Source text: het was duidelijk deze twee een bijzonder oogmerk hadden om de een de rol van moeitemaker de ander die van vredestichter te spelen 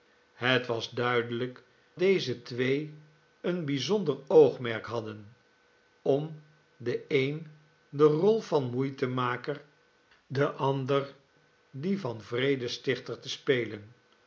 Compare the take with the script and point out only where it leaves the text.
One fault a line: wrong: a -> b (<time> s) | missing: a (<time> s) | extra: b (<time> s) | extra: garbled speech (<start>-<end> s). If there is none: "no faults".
no faults